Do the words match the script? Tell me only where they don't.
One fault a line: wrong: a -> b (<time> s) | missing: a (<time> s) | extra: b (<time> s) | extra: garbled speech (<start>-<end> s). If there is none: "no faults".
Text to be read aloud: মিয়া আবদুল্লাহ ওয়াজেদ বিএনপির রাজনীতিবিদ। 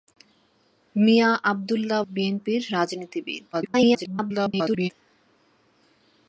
missing: ওয়াজেদ (2.0 s)
extra: garbled speech (3.5-4.9 s)